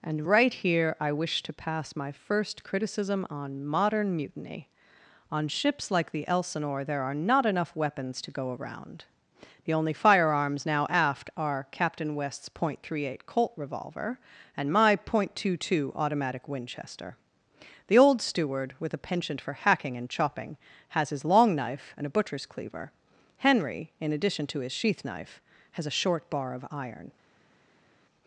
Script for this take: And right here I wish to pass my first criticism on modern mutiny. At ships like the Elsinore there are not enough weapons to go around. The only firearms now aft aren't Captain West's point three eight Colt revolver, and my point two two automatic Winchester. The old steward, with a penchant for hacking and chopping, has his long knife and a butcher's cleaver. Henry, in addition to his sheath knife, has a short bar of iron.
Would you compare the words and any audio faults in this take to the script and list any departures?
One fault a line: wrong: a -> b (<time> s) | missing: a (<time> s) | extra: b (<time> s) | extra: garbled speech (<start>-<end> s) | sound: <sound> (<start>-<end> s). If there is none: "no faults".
wrong: At -> On (5.3 s)
wrong: aren't -> are (11.4 s)